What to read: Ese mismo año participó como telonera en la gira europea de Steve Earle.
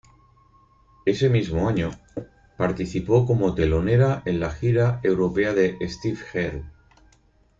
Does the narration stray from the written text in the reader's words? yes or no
no